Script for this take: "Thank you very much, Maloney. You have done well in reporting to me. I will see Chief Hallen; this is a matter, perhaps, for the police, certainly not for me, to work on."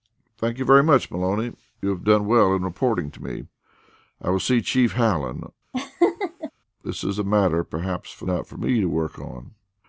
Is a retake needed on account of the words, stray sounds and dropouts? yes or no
yes